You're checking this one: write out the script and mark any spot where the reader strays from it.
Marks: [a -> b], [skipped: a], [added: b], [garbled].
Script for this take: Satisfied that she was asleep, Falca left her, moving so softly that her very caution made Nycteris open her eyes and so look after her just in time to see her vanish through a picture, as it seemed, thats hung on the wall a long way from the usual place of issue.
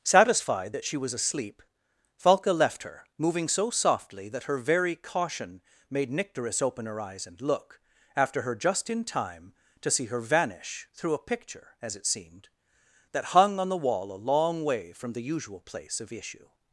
Satisfied that she was asleep, Falca left her, moving so softly that her very caution made Nycteris open her eyes and [skipped: so] look after her just in time to see her vanish through a picture, as it seemed, [thats -> that] hung on the wall a long way from the usual place of issue.